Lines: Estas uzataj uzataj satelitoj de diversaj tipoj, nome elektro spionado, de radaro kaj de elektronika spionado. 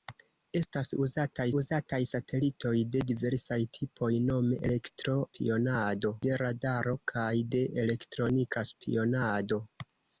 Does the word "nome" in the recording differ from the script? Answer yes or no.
no